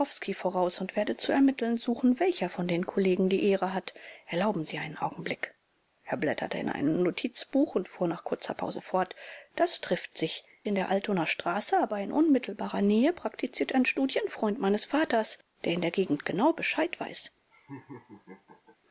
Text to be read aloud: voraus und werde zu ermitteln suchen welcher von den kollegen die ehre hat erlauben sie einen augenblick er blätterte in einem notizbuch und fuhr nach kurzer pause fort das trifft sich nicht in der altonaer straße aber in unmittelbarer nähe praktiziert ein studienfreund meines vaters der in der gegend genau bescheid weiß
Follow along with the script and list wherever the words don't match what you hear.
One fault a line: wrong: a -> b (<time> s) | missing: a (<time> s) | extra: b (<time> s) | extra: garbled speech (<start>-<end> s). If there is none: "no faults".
missing: nicht (10.4 s)